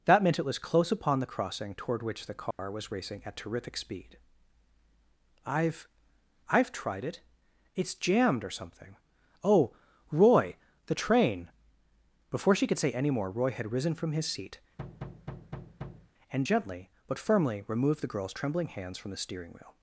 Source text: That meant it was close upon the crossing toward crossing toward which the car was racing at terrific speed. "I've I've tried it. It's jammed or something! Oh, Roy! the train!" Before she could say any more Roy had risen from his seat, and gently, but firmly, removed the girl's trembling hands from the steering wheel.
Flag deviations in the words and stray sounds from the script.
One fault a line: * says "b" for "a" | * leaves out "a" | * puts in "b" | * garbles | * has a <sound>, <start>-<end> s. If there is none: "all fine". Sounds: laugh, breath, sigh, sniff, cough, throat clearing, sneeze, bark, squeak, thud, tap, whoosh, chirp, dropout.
* leaves out "crossing toward"
* has a dropout, 2.5-2.6 s
* has a thud, 14.8-16.1 s